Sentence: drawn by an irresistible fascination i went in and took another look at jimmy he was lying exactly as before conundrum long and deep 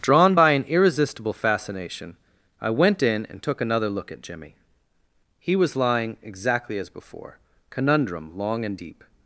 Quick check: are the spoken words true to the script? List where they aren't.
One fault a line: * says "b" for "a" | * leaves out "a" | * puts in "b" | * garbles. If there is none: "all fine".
all fine